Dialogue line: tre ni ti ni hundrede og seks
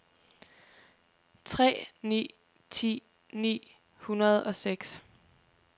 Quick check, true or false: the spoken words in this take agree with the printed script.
true